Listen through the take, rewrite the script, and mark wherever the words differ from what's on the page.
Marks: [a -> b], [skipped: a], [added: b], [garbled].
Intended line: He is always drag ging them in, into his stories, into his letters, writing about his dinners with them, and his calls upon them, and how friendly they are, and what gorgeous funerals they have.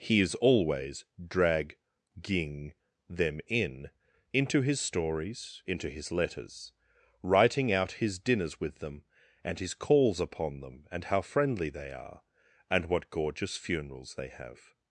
He is always drag ging them in, into his stories, into his letters, writing [about -> out] his dinners with them, and his calls upon them, and how friendly they are, and what gorgeous funerals they have.